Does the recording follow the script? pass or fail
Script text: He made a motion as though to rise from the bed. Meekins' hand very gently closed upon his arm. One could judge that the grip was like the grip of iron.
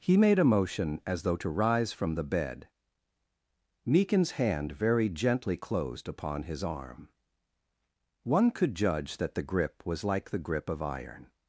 pass